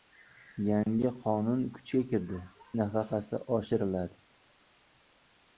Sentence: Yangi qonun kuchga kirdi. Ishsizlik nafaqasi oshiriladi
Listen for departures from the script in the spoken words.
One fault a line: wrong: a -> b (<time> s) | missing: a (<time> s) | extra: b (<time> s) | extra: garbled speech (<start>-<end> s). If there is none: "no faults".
missing: Ishsizlik (2.4 s)